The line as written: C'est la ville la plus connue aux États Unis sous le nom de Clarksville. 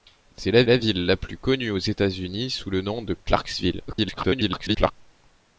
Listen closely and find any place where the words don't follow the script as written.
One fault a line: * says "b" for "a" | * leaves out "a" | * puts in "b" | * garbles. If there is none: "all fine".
* puts in "la"
* garbles